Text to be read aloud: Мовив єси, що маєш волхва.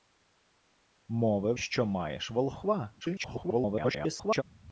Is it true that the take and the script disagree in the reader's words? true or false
true